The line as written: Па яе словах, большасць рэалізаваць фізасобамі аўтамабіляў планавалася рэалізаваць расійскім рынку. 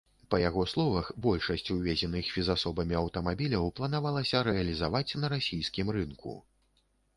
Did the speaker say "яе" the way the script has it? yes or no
no